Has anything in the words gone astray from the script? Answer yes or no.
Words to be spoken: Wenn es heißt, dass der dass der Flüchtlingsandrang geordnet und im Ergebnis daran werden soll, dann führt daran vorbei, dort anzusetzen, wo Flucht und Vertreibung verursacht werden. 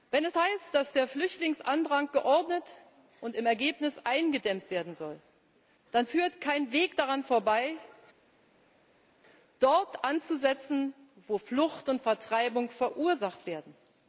yes